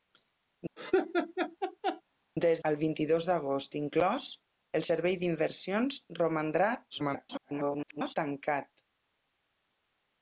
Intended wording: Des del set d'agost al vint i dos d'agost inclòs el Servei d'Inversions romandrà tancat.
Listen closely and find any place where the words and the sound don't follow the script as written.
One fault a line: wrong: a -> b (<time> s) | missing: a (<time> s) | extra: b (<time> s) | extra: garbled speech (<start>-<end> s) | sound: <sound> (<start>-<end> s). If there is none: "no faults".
sound: laugh (0.8-2.0 s)
missing: del set d'agost (2.6 s)
extra: garbled speech (6.9-8.1 s)